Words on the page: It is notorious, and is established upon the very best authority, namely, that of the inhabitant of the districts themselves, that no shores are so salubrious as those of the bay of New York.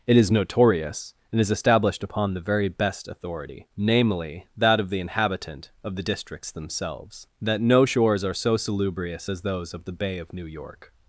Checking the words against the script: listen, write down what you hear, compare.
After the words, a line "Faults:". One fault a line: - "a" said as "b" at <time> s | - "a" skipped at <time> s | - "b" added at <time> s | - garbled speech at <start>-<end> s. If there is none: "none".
It is notorious, and is established upon the very best authority, namely, that of the inhabitant of the districts themselves, that no shores are so salubrious as those of the bay of New York.
Faults:
none